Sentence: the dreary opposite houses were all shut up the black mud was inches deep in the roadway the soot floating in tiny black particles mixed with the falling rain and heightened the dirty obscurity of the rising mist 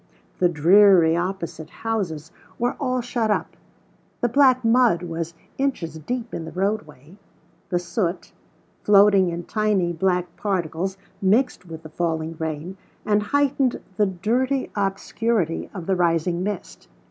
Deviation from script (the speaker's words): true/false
false